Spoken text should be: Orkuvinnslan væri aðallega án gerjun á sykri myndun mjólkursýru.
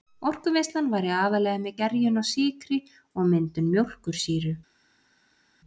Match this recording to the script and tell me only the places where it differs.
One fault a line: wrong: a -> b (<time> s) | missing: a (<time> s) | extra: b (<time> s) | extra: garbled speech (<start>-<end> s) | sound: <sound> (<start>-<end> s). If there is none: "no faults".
wrong: án -> með (1.6 s)
extra: og (3.2 s)